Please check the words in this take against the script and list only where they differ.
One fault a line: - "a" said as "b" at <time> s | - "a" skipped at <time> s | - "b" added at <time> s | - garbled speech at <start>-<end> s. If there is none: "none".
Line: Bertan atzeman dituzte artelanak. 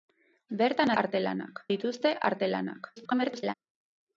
- "atzeman" said as "artelanak" at 1.0 s
- garbled speech at 3.0-3.5 s